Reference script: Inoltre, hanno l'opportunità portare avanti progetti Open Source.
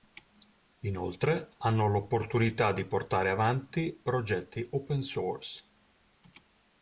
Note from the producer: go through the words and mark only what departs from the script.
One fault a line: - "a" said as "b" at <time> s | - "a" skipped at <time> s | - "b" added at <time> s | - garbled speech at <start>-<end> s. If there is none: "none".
- "di" added at 2.7 s